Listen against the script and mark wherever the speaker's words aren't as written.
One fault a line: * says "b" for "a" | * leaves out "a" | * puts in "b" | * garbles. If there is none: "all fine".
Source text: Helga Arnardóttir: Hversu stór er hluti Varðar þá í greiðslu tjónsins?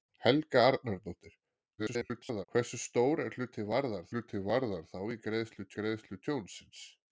* garbles
* puts in "hluti Varðar"
* puts in "greiðslu"